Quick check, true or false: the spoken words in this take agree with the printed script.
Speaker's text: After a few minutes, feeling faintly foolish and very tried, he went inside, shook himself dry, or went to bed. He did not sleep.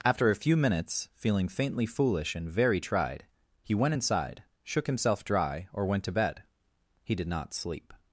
true